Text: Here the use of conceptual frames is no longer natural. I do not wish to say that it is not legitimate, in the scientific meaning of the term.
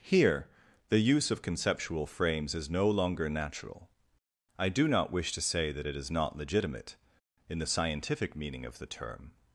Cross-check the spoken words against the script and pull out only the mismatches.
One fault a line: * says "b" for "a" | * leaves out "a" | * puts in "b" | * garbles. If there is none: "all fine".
all fine